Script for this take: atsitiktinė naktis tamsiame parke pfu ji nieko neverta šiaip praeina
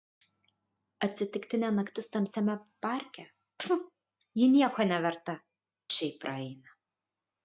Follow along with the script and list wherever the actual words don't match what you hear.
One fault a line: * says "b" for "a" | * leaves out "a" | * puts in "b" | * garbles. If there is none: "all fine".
all fine